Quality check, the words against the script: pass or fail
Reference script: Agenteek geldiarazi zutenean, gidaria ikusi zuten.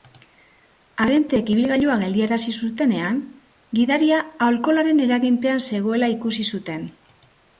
fail